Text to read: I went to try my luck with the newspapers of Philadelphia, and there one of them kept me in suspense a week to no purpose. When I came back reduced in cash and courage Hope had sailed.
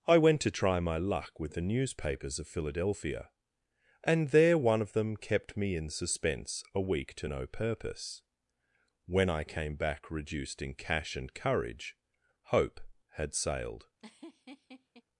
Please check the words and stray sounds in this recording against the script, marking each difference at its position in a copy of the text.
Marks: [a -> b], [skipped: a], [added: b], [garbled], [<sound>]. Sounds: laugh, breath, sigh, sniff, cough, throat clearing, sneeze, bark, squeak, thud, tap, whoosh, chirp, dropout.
I went to try my luck with the newspapers of Philadelphia, and there one of them kept me in suspense a week to no purpose. When I came back reduced in cash and courage Hope had sailed. [laugh]